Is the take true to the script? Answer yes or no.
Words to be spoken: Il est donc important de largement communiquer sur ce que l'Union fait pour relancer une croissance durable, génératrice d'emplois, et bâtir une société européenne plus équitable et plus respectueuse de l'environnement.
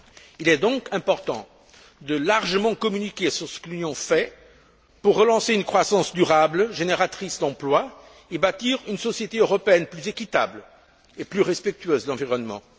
yes